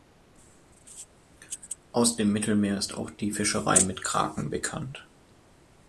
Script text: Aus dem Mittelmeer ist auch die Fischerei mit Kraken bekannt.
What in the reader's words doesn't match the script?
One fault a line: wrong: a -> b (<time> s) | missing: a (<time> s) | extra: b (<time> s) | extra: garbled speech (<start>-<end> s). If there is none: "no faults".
no faults